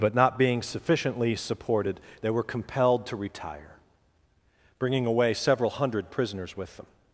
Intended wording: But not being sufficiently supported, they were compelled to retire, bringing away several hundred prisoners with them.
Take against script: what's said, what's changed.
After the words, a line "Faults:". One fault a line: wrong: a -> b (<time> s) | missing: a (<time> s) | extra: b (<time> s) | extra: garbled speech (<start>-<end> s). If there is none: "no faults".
But not being sufficiently supported, they were compelled to retire, bringing away several hundred prisoners with them.
Faults:
no faults